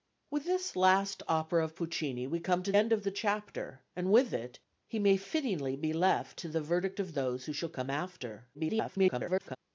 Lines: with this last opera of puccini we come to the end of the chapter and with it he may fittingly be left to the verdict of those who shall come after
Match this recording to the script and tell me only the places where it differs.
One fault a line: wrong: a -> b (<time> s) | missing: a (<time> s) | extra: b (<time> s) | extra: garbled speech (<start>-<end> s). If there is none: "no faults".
missing: the (2.7 s)
extra: garbled speech (8.5-9.6 s)